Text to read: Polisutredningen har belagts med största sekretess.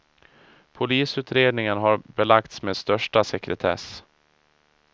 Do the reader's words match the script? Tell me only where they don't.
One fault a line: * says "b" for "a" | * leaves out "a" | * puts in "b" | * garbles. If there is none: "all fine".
all fine